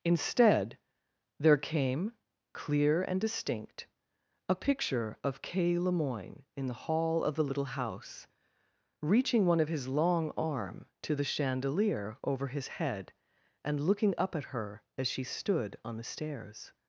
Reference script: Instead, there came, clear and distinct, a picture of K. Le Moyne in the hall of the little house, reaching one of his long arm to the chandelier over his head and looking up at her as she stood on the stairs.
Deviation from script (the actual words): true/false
false